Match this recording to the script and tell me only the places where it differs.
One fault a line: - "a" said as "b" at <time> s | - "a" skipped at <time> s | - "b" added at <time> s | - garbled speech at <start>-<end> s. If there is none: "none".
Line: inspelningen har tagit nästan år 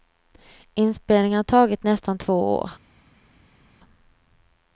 - "två" added at 2.2 s